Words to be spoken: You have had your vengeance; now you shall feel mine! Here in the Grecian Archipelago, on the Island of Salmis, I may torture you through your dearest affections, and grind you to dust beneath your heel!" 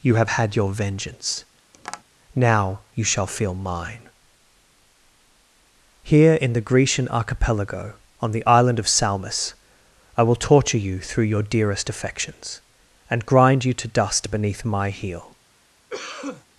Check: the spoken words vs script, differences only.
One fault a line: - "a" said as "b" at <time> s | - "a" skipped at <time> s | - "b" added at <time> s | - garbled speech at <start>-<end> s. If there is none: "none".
- "may" said as "will" at 10.2 s
- "your" said as "my" at 14.6 s